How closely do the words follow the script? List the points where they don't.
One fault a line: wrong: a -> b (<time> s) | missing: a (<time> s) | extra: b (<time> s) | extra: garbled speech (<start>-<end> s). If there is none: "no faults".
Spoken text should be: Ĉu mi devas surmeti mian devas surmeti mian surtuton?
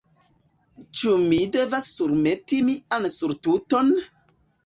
missing: devas surmeti mian (3.1 s)